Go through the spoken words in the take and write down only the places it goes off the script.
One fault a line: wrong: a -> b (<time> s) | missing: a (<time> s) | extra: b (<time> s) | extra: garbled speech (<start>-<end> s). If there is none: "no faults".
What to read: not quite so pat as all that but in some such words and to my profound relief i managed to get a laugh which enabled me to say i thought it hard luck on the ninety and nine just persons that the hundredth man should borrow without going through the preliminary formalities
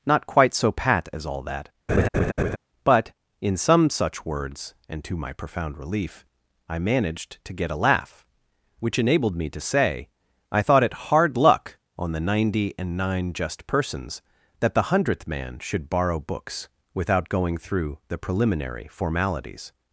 extra: books (16.2 s)